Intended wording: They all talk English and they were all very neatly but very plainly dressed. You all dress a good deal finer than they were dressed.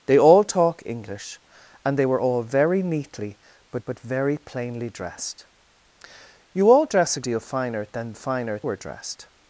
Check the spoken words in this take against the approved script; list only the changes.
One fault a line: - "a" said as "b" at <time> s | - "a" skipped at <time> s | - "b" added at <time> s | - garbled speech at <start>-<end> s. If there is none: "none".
- "but" added at 3.9 s
- "good" skipped at 7.2 s
- "they" said as "finer" at 8.1 s